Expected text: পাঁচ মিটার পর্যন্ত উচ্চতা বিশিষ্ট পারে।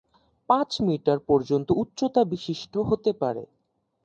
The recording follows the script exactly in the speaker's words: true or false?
false